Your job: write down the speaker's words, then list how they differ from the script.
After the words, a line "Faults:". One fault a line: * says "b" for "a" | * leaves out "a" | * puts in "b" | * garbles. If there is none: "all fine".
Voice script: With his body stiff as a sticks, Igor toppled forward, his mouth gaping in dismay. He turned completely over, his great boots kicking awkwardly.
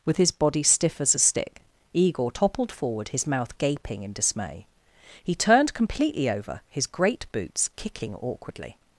With his body stiff as a stick, Igor toppled forward, his mouth gaping in dismay. He turned completely over, his great boots kicking awkwardly.
Faults:
* says "stick" for "sticks"